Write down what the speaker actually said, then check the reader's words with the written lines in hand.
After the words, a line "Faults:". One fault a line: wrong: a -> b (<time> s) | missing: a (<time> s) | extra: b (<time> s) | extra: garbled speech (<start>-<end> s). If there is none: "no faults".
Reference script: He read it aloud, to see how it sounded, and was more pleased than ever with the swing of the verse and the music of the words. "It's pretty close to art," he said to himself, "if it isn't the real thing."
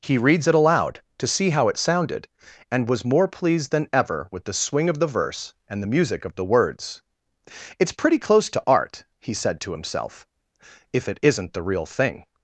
He reads it aloud, to see how it sounded, and was more pleased than ever with the swing of the verse and the music of the words. "It's pretty close to art," he said to himself, "if it isn't the real thing."
Faults:
wrong: read -> reads (0.2 s)